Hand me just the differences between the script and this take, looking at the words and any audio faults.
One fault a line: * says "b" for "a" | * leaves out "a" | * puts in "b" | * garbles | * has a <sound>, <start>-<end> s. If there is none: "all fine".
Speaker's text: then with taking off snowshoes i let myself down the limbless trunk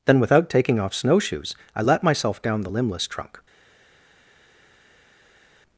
* says "without" for "with"